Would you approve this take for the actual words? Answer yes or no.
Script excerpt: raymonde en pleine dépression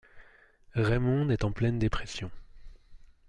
no